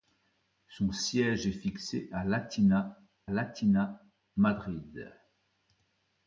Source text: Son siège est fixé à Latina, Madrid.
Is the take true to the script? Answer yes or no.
no